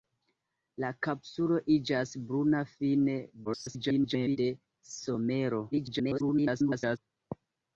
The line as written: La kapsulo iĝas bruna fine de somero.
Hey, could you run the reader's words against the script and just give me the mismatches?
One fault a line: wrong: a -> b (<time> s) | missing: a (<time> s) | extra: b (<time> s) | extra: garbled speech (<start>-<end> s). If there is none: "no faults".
extra: garbled speech (3.4-4.4 s)
extra: garbled speech (5.7-7.0 s)